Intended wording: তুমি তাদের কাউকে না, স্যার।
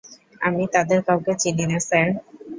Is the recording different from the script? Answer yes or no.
yes